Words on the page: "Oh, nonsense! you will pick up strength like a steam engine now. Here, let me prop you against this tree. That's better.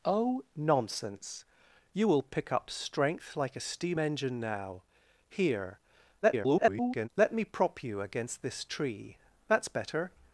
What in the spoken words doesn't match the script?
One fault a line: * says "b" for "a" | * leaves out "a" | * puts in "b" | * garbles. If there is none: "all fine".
* garbles